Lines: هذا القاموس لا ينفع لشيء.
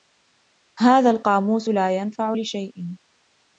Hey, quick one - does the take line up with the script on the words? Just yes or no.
yes